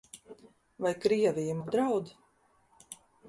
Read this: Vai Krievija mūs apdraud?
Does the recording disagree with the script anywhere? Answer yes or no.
yes